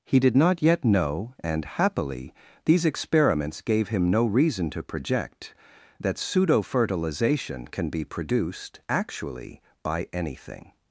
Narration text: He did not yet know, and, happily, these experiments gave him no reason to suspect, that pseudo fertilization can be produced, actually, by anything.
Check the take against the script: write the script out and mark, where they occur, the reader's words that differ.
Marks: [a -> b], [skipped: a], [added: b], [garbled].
He did not yet know, and, happily, these experiments gave him no reason to [suspect, -> project] that pseudo fertilization can be produced, actually, by anything.